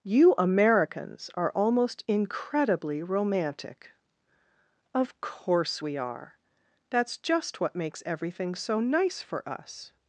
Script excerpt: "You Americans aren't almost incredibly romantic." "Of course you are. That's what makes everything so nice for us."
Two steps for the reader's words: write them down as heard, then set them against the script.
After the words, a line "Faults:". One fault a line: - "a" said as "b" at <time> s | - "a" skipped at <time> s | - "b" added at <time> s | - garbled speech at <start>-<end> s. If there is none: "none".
"You Americans are almost incredibly romantic." "Of course we are. That's just what makes everything so nice for us."
Faults:
- "aren't" said as "are" at 1.4 s
- "you" said as "we" at 5.8 s
- "just" added at 7.2 s